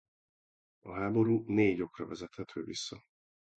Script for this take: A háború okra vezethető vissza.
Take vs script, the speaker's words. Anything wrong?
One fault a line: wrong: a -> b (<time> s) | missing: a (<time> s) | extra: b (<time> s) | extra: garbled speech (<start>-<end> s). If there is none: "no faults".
extra: négy (1.5 s)